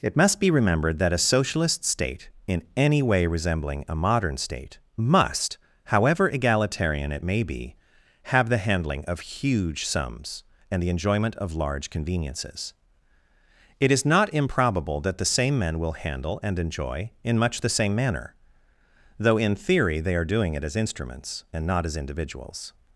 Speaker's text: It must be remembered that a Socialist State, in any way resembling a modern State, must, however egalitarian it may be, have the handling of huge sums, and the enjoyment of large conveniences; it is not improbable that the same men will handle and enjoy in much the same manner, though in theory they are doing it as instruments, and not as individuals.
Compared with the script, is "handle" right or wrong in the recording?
right